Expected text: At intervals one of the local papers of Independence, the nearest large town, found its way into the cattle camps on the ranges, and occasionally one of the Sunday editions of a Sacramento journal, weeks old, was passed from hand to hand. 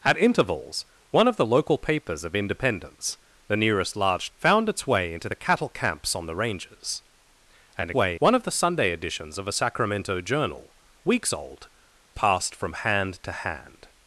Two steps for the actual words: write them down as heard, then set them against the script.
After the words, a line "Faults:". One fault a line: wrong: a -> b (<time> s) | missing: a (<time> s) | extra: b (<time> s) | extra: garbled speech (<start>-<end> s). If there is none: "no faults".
At intervals one of the local papers of Independence, the nearest large found its way into the cattle camps on the ranges, and way one of the Sunday editions of a Sacramento journal, weeks old, passed from hand to hand.
Faults:
missing: town (4.3 s)
wrong: occasionally -> way (7.9 s)
missing: was (11.7 s)